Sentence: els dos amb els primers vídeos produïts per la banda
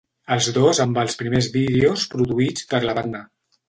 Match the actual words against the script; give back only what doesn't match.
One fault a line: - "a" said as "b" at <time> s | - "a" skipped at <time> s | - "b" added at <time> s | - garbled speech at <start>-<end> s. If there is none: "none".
none